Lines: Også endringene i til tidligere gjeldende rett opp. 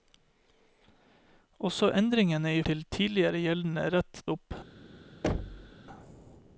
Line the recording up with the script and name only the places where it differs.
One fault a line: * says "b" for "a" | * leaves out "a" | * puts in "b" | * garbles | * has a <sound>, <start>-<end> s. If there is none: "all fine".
* has a thud, 5.2-5.7 s